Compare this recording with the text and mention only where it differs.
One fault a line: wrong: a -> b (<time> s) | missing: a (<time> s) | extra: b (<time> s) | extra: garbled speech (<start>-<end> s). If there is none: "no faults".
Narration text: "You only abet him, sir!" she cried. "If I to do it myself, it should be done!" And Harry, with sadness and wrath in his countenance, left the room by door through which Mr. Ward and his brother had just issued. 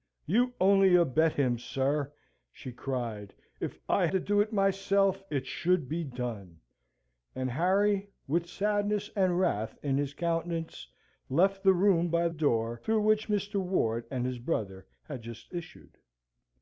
no faults